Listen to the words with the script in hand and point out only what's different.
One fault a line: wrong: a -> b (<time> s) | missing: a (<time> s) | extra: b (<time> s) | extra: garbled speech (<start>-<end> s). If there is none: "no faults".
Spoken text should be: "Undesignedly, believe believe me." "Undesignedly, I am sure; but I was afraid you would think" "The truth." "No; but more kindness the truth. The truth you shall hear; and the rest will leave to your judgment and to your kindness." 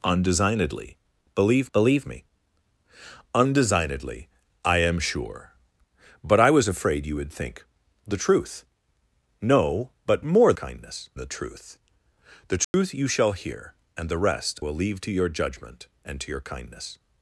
no faults